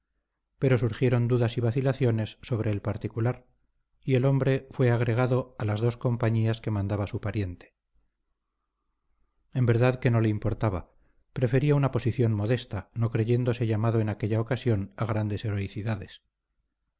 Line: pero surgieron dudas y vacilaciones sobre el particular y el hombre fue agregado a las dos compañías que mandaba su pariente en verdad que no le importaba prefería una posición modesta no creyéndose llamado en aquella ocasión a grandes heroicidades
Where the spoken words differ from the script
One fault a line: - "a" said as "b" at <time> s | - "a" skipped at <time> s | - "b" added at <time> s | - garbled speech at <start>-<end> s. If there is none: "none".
none